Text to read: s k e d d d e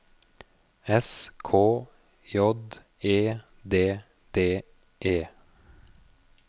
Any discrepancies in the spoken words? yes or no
yes